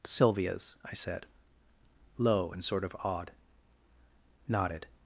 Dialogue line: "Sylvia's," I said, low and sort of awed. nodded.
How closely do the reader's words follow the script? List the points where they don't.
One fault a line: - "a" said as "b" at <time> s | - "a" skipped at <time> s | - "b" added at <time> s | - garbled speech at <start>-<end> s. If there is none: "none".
none